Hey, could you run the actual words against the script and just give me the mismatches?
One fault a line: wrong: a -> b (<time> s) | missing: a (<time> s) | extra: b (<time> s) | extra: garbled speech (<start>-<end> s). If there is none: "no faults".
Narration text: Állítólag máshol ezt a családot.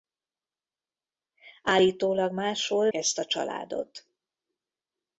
no faults